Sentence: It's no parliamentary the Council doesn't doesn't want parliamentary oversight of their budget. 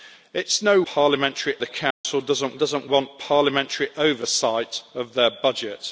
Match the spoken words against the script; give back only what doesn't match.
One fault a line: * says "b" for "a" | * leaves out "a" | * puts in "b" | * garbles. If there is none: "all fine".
all fine